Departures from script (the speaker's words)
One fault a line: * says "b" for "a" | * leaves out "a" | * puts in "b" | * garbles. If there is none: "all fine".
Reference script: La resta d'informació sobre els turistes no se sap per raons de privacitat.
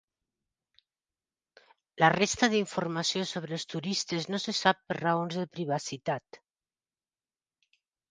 all fine